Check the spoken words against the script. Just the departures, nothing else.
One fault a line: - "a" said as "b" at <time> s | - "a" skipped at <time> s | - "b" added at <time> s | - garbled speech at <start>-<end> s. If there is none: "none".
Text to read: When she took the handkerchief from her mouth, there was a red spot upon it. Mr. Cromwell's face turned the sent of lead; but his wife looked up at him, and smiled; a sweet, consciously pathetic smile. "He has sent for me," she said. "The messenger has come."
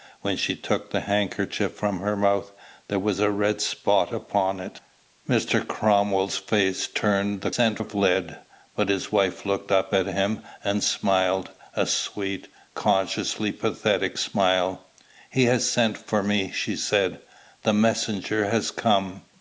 none